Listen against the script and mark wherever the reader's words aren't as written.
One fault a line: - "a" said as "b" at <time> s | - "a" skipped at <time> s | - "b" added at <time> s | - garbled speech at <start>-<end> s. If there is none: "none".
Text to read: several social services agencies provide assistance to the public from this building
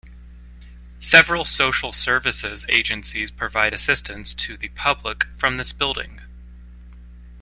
none